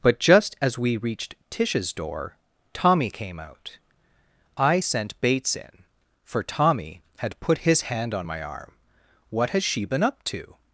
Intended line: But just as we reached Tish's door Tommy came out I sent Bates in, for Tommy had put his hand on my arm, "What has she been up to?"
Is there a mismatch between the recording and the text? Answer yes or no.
no